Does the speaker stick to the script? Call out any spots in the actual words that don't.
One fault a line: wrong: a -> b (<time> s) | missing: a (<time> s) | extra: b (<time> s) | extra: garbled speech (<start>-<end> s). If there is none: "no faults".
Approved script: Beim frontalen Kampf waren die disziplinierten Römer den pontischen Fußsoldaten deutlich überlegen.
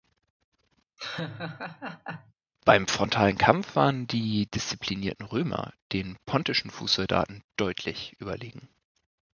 no faults